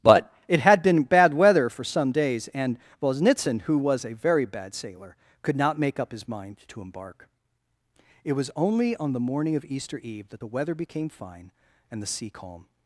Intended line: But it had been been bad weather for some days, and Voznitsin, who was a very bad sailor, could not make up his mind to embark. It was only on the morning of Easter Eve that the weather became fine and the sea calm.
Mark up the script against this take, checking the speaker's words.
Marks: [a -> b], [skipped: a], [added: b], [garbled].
But it had been [skipped: been] bad weather for some days, and Voznitsin, who was a very bad sailor, could not make up his mind to embark. It was only on the morning of Easter Eve that the weather became fine and the sea calm.